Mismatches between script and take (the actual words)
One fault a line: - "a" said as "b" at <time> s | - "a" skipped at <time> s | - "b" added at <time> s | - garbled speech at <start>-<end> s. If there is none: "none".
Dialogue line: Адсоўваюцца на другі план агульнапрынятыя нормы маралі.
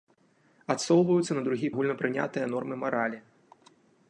- "план" skipped at 1.7 s